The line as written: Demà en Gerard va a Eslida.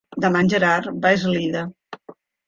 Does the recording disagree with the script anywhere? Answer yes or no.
no